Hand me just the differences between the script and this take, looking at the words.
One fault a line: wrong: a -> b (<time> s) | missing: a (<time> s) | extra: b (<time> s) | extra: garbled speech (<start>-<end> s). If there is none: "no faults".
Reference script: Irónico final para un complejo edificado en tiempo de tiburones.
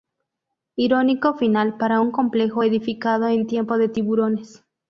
no faults